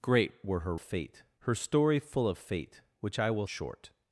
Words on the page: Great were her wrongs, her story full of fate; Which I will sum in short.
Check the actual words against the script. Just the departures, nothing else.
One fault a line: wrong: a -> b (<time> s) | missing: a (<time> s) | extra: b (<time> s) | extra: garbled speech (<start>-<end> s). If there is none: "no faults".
wrong: wrongs -> fate (0.8 s)
missing: sum in (3.5 s)